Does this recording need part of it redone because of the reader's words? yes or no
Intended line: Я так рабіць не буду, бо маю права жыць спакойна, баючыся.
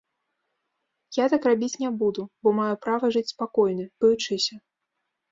no